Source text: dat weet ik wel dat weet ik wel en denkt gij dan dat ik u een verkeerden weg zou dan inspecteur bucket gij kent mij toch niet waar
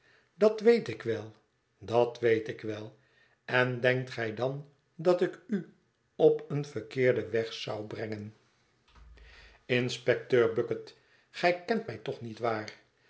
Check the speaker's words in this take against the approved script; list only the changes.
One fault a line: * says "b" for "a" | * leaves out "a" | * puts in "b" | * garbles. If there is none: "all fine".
* puts in "op"
* says "brengen" for "dan"